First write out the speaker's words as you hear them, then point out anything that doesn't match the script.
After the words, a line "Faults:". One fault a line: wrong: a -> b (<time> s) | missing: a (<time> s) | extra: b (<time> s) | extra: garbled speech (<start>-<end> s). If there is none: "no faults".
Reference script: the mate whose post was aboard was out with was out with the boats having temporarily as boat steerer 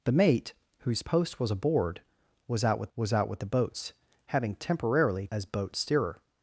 the mate whose post was aboard was out with was out with the boats having temporarily as boat steerer
Faults:
no faults